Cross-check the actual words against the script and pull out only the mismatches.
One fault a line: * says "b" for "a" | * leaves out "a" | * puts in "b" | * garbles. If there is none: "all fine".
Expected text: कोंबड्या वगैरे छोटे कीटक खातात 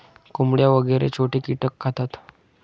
all fine